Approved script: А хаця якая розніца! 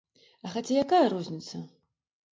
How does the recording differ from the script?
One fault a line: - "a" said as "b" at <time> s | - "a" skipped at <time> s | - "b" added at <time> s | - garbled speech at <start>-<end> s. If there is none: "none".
none